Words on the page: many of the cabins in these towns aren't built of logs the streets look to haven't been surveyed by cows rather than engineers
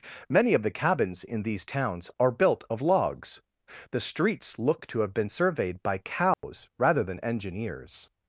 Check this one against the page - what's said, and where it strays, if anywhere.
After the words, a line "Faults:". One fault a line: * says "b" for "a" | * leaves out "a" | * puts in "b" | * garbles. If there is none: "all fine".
many of the cabins in these towns are built of logs the streets look to have been surveyed by cows rather than engineers
Faults:
* says "are" for "aren't"
* says "have" for "haven't"